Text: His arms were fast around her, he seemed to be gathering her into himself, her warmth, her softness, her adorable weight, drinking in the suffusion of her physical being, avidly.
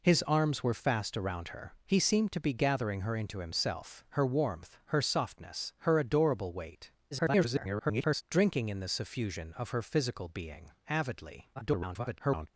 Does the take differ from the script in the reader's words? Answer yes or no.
yes